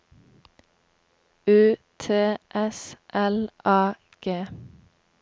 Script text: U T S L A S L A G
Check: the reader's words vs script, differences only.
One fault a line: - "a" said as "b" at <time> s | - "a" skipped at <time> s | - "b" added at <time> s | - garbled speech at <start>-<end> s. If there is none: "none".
- "S L A" skipped at 4.0 s